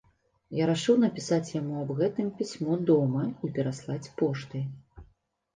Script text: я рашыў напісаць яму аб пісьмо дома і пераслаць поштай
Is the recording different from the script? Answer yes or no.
yes